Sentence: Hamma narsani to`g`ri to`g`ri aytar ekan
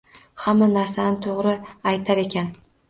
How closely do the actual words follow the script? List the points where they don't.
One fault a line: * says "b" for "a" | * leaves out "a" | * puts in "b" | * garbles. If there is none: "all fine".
* leaves out "to`g`ri"